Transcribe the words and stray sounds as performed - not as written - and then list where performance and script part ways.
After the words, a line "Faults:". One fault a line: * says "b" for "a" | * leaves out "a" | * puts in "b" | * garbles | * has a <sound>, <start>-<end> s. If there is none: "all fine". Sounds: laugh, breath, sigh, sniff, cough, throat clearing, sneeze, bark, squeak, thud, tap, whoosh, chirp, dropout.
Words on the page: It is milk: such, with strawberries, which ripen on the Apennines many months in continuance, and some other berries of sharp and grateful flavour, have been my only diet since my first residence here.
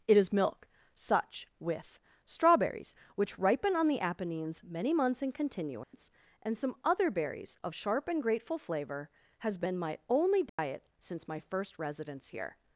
It is milk: such, with strawberries, which ripen on the Apennines many months in continuance, and some other berries of sharp and grateful flavour, has been my only diet since my first residence here.
Faults:
* has a dropout, 5.8-5.9 s
* says "has" for "have"
* has a dropout, 10.5-10.6 s